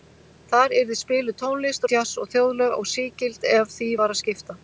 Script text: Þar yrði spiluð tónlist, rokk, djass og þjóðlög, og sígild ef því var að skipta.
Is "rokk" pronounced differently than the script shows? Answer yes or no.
yes